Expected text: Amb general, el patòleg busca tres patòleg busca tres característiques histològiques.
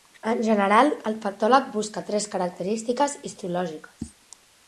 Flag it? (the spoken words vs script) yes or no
yes